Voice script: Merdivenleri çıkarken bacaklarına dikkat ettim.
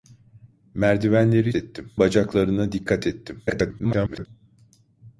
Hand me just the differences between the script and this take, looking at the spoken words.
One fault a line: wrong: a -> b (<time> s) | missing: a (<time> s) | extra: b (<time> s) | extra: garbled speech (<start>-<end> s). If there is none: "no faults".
wrong: çıkarken -> ettim (1.5 s)
extra: garbled speech (3.5-4.3 s)